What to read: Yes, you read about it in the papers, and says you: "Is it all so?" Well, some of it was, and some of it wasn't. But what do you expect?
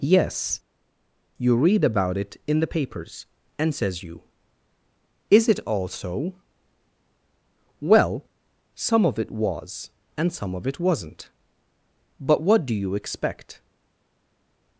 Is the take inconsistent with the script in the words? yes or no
no